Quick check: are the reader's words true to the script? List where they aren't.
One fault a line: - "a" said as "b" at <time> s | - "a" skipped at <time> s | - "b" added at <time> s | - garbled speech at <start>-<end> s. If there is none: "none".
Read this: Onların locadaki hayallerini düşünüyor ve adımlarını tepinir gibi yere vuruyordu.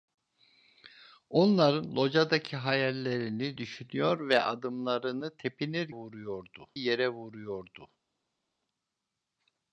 - "gibi" said as "vuruyordu" at 5.9 s